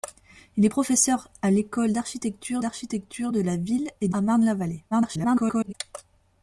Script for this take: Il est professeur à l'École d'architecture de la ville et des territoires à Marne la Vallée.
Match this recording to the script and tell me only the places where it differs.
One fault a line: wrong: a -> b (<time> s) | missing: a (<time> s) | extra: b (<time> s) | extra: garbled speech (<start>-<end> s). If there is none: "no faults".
extra: d'architecture (2.6 s)
missing: des territoires (4.1 s)
extra: garbled speech (4.9-5.7 s)